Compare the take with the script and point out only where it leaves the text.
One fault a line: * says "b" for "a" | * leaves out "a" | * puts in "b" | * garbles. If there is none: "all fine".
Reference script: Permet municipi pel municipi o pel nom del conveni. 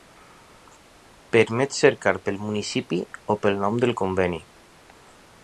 * says "cercar" for "municipi"